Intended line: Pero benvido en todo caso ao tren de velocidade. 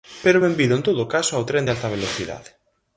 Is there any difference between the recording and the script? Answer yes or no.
yes